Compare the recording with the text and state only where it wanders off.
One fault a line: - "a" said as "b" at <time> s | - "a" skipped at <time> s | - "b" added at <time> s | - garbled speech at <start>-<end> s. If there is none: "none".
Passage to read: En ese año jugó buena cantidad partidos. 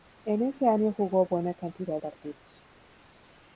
none